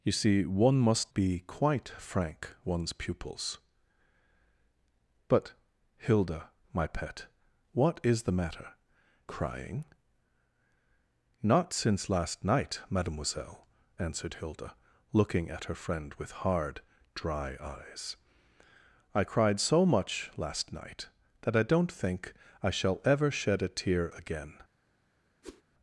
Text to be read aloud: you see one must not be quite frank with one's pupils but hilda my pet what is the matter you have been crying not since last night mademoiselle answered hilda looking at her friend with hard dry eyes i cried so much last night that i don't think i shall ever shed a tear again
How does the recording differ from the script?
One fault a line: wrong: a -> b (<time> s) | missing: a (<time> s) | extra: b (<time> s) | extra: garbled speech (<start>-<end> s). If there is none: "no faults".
missing: not (1.1 s)
missing: with (2.6 s)
missing: you have been (8.7 s)